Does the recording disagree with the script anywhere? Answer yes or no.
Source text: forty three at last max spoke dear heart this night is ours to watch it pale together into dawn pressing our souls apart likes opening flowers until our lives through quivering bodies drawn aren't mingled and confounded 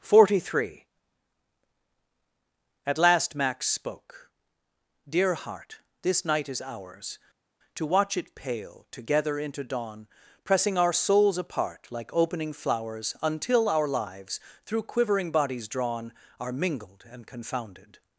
yes